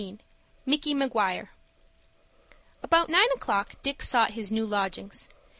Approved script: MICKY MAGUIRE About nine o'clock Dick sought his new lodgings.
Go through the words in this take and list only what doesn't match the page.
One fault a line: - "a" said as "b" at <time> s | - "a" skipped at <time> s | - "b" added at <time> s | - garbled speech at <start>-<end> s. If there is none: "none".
none